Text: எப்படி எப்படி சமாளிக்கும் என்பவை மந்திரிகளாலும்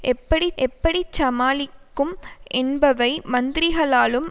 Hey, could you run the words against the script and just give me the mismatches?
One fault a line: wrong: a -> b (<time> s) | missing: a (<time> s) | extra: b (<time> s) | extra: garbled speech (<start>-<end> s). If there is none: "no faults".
no faults